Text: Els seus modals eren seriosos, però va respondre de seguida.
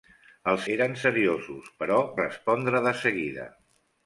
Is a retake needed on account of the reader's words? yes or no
yes